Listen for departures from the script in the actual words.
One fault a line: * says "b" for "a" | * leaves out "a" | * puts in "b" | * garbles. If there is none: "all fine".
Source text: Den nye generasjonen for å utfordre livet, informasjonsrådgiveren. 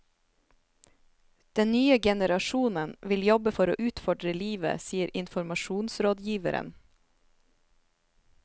* puts in "vil jobbe"
* puts in "sier"